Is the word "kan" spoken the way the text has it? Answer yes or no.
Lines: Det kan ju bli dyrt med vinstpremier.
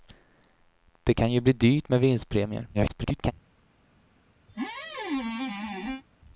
yes